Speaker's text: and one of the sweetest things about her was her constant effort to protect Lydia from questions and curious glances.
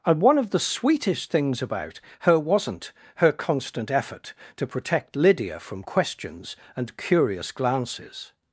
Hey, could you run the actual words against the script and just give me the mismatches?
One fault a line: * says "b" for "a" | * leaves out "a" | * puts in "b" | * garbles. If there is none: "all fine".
* says "wasn't" for "was"